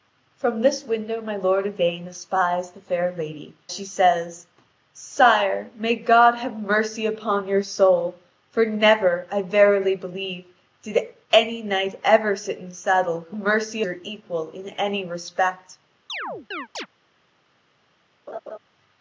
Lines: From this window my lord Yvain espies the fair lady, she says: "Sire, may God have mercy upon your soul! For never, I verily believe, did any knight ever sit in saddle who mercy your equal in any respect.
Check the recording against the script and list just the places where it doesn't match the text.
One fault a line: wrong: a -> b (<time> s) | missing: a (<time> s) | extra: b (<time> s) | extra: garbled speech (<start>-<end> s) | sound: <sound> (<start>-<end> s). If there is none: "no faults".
sound: chirp (16.1-16.9 s)
sound: laugh (18.3-18.6 s)